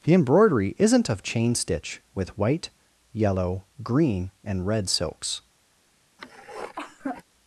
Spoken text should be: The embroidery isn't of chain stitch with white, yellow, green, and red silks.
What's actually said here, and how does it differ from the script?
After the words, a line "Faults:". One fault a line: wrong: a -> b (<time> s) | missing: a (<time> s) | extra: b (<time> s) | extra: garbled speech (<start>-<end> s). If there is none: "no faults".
The embroidery isn't of chain stitch with white, yellow, green, and red silks.
Faults:
no faults